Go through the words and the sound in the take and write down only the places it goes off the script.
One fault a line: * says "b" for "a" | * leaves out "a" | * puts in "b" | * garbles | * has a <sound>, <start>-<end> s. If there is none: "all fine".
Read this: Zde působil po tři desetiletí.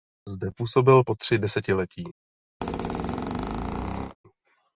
* has a squeak, 2.6-4.2 s